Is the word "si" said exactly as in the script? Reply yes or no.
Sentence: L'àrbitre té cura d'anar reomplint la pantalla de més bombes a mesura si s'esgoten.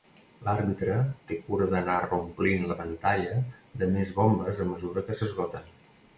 no